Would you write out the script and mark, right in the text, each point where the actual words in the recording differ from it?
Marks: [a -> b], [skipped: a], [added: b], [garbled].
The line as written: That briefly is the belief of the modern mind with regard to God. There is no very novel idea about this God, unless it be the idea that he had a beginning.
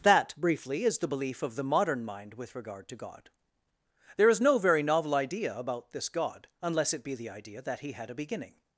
That briefly is the belief of the modern mind with regard to God. There is no very novel idea about this God, unless it be the idea that he had a beginning.